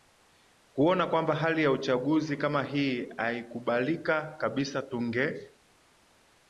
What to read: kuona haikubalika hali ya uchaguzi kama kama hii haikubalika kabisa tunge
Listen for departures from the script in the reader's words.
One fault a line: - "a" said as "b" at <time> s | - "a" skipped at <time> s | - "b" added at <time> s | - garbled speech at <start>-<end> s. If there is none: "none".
- "haikubalika" said as "kwamba" at 1.1 s
- "kama" skipped at 2.6 s